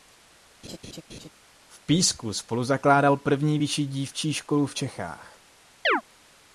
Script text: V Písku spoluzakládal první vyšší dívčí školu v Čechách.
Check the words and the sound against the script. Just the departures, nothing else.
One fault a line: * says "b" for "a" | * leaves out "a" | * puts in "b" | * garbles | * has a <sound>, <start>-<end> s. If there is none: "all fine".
* has a laugh, 0.6-1.3 s
* has a chirp, 5.8-6.0 s